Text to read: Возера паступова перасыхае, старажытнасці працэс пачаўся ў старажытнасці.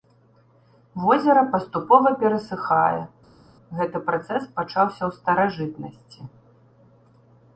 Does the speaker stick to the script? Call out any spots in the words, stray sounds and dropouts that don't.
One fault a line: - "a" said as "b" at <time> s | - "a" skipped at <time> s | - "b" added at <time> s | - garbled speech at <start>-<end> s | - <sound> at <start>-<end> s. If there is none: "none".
- "старажытнасці" said as "гэты" at 3.8 s